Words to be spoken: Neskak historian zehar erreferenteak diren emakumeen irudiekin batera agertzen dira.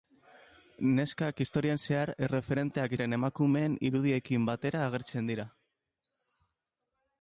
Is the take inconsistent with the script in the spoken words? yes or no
no